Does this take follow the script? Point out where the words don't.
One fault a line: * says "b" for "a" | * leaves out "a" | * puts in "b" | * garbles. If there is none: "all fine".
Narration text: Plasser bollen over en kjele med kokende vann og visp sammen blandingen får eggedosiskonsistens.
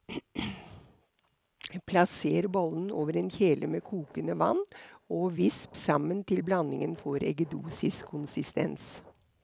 * puts in "til"